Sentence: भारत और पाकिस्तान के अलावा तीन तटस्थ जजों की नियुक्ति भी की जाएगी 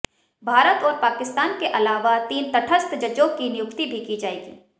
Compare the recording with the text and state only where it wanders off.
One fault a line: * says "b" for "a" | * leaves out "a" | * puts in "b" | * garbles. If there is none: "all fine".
all fine